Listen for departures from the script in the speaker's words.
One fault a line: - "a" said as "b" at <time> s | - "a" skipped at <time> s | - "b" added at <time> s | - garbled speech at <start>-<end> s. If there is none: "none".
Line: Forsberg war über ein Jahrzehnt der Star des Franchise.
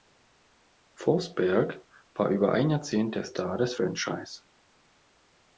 none